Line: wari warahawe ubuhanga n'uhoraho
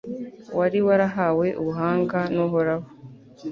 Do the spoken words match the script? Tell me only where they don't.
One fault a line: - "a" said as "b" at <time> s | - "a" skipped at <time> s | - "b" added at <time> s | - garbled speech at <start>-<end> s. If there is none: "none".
none